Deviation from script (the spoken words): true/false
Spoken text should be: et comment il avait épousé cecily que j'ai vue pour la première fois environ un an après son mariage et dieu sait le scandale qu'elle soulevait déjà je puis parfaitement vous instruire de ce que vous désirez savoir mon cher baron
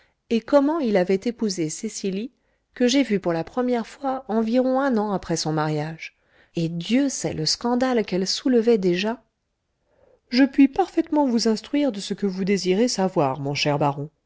false